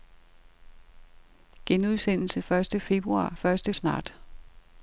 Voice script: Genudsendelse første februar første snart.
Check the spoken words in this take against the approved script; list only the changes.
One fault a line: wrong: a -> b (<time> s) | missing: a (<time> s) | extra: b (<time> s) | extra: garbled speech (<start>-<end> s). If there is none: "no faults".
no faults